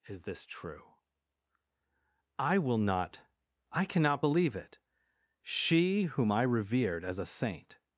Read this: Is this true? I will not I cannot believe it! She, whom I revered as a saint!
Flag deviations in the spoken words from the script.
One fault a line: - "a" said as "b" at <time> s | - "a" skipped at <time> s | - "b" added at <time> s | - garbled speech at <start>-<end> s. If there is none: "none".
none